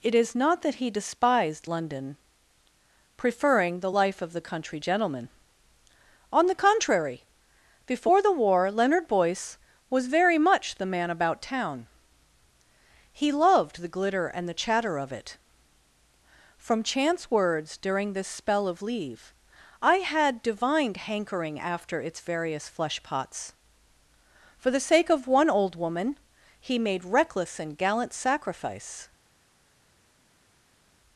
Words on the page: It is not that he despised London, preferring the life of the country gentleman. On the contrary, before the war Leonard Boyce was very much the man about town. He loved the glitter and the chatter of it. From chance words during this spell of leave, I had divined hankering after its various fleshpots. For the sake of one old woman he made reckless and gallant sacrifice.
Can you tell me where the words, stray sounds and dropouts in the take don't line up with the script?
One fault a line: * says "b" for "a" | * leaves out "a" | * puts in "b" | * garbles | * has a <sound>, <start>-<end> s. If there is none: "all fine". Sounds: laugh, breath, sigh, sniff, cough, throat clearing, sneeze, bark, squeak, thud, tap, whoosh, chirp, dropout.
all fine